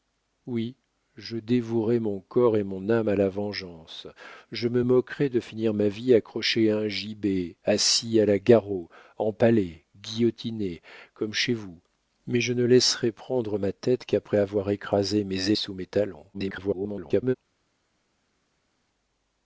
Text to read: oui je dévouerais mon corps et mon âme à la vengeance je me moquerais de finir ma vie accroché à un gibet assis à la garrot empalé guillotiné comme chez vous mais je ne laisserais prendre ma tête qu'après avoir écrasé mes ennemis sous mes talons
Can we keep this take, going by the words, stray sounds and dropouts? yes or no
no